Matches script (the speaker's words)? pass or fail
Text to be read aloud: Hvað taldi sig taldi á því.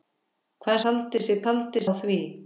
pass